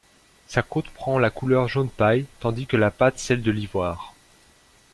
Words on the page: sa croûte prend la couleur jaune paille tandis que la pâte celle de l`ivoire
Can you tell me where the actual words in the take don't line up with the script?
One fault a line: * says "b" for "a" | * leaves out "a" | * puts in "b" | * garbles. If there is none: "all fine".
all fine